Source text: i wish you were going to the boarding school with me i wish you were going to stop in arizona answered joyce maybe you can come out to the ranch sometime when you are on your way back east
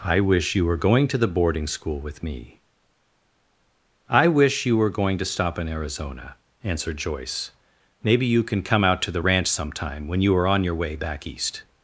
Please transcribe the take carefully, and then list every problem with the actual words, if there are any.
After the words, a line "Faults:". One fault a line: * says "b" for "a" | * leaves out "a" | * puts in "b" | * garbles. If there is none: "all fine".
i wish you were going to the boarding school with me i wish you were going to stop in arizona answered joyce maybe you can come out to the ranch sometime when you are on your way back east
Faults:
all fine